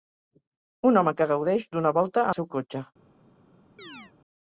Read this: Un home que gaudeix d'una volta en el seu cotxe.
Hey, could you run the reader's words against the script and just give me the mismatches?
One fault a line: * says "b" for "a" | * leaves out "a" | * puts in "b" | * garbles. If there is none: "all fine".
* leaves out "en"